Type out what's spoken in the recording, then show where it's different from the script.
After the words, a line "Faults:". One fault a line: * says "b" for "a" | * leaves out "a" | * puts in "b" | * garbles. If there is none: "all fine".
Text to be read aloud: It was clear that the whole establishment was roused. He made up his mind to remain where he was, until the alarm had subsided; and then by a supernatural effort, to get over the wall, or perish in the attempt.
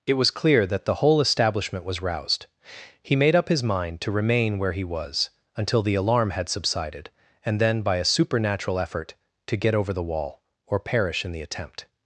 It was clear that the whole establishment was roused. He made up his mind to remain where he was, until the alarm had subsided; and then by a supernatural effort, to get over the wall, or perish in the attempt.
Faults:
all fine